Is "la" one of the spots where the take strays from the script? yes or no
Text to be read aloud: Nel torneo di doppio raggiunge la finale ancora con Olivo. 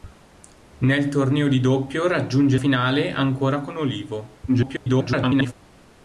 yes